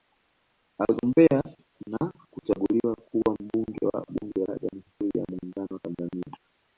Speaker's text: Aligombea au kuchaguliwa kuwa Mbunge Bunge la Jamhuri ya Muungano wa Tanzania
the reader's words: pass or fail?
fail